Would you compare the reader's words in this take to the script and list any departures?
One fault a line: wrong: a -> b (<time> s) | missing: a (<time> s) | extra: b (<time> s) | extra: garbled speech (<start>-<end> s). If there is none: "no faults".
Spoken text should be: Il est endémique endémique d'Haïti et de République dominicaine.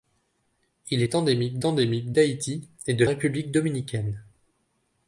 no faults